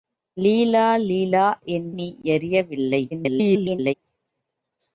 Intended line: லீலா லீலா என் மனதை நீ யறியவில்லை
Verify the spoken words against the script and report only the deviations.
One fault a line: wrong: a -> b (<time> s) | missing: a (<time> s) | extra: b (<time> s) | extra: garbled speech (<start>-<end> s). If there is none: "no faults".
missing: மனதை (1.9 s)
extra: garbled speech (3.1-3.9 s)